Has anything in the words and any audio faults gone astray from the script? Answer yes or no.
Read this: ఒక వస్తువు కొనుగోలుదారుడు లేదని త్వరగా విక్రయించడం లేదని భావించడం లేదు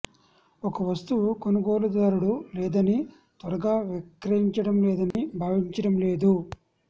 yes